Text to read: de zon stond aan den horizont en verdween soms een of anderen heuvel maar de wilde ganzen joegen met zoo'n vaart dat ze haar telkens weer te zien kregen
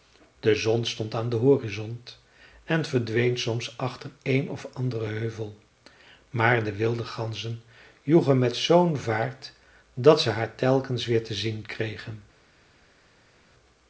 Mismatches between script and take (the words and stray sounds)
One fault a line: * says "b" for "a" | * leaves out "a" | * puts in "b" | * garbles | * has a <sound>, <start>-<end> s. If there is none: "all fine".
* puts in "achter"